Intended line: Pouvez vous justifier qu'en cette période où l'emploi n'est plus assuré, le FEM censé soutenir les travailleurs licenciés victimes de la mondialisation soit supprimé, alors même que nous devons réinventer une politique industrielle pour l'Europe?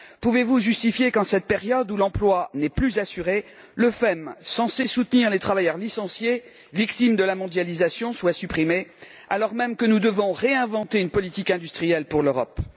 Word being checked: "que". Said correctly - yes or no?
yes